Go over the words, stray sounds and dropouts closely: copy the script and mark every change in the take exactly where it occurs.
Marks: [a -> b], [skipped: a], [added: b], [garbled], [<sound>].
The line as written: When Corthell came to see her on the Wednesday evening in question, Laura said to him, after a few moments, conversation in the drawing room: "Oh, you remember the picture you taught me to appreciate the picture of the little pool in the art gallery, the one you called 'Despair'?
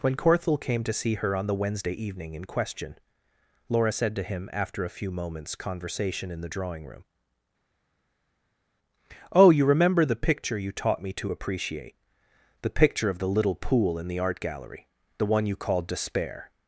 When Corthell came to see her on the Wednesday evening in question, Laura said to him, after a few moments, conversation in the drawing room: "Oh, you remember the picture you taught me to appreciate the picture of the little pool in the art gallery, the one you called 'Despair'?